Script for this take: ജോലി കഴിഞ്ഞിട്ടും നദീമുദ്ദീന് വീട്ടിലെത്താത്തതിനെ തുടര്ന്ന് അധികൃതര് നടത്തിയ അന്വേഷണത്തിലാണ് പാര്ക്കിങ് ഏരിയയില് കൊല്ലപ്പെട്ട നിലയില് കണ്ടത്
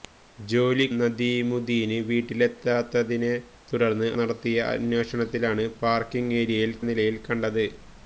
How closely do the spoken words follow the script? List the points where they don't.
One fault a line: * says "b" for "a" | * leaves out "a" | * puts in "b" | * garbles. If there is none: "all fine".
* leaves out "കഴിഞ്ഞിട്ടും"
* leaves out "അധികൃതര്"
* leaves out "കൊല്ലപ്പെട്ട"